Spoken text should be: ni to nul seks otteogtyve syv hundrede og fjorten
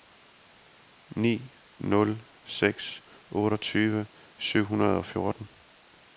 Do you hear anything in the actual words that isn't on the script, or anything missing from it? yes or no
yes